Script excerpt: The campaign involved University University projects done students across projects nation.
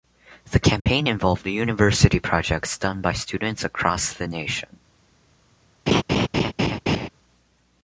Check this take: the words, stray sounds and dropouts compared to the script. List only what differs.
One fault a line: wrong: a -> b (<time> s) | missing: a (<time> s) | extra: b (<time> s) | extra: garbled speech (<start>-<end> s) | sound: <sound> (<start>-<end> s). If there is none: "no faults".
sound: dropout (0.8-0.9 s)
missing: University (2.2 s)
extra: by (3.0 s)
wrong: projects -> the (4.1 s)
sound: laugh (5.9-7.1 s)